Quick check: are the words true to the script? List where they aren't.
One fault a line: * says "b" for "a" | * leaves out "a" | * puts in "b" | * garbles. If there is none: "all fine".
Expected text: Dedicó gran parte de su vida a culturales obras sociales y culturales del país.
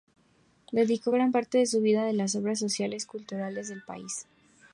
* says "las" for "culturales"